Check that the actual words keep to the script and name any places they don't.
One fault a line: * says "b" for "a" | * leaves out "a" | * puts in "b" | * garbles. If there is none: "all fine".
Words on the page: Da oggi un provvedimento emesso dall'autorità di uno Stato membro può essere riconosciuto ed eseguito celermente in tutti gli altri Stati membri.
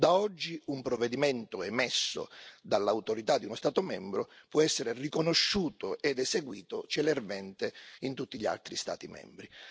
all fine